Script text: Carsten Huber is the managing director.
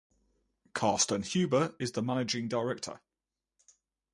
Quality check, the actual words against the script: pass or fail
pass